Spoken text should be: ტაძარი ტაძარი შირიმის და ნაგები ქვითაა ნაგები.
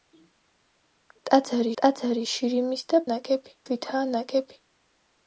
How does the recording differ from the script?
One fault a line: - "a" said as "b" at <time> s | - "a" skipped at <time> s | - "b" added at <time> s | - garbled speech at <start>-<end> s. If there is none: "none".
none